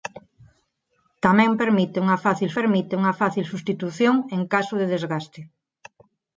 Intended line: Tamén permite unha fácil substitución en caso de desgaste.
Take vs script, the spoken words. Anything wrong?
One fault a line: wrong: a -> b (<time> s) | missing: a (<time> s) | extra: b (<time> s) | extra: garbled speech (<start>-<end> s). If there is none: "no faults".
extra: permite unha fácil (2.6 s)